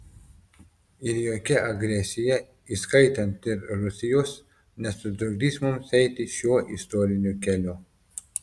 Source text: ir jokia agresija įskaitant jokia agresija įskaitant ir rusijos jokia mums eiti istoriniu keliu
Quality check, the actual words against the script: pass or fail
fail